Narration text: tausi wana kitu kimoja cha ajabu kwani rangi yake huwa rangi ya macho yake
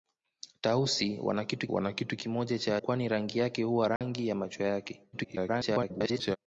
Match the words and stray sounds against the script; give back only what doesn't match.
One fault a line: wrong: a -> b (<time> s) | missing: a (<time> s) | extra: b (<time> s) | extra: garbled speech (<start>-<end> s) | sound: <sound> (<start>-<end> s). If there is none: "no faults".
extra: wana kitu (1.7 s)
missing: ajabu (2.8 s)
sound: dropout (4.0-4.0 s)
extra: garbled speech (5.1-6.4 s)